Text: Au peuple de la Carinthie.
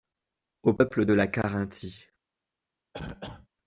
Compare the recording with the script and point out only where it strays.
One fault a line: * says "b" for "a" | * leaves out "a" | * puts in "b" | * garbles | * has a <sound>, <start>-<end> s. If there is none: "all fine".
* has a cough, 2.9-3.5 s